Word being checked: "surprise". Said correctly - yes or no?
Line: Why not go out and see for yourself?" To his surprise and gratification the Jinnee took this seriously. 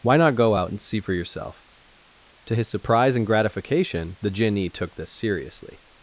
yes